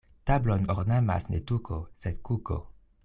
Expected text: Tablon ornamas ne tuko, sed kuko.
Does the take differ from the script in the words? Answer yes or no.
no